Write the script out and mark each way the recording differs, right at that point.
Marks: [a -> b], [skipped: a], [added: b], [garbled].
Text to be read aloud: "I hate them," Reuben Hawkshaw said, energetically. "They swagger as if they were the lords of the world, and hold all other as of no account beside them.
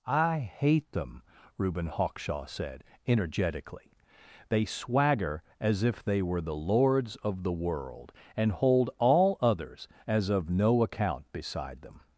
"I hate them," Reuben Hawkshaw said, energetically. "They swagger as if they were the lords of the world, and hold all [other -> others] as of no account beside them.